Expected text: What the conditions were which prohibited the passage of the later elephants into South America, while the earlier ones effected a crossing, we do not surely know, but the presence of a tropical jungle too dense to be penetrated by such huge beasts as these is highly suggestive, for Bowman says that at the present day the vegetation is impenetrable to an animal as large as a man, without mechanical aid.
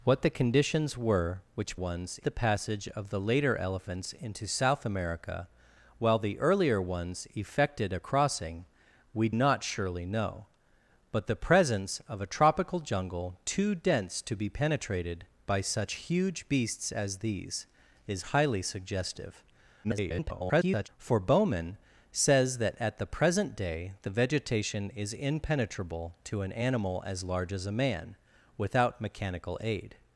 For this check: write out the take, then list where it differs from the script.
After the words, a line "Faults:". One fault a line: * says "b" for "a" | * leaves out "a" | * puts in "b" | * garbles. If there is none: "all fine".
What the conditions were which ones the passage of the later elephants into South America, while the earlier ones effected a crossing, we not surely know, but the presence of a tropical jungle too dense to be penetrated by such huge beasts as these is highly suggestive, [garbled] for Bowman says that at the present day the vegetation is impenetrable to an animal as large as a man, without mechanical aid.
Faults:
* says "ones" for "prohibited"
* leaves out "do"
* garbles